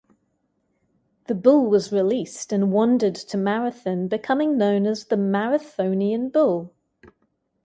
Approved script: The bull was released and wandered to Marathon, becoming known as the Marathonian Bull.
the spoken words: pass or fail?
pass